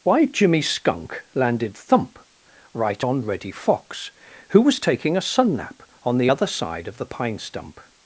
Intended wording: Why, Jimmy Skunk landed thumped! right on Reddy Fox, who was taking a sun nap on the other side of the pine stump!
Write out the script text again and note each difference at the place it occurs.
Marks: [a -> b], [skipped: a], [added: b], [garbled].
Why, Jimmy Skunk landed [thumped! -> thump] right on Reddy Fox, who was taking a sun nap on the other side of the pine stump!